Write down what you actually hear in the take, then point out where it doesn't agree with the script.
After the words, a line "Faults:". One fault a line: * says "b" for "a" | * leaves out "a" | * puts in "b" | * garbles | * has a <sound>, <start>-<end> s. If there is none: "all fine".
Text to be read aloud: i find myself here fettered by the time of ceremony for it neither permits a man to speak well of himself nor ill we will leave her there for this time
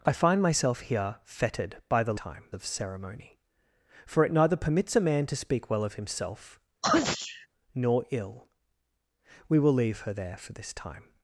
i find myself here fettered by the time of ceremony for it neither permits a man to speak well of himself nor ill we will leave her there for this time
Faults:
* has a sneeze, 6.8-7.5 s